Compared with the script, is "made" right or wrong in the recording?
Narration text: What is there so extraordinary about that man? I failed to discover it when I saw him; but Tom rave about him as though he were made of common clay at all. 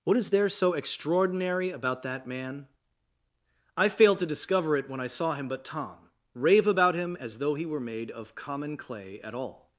right